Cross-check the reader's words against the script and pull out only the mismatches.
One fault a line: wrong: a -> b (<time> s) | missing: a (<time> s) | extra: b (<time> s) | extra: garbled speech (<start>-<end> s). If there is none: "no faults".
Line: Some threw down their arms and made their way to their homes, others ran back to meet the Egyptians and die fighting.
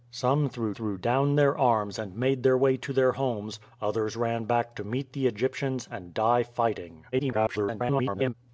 extra: threw (0.7 s)
extra: garbled speech (7.1-8.3 s)